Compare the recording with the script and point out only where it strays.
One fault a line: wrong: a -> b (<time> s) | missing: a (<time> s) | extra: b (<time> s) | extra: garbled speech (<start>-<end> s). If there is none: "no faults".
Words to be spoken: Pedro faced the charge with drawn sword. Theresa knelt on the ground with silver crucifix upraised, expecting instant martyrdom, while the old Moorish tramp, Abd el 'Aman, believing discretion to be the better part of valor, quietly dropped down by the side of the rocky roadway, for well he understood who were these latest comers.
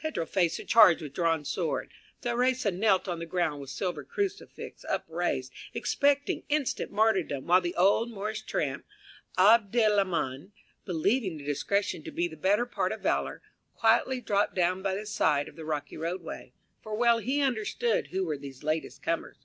no faults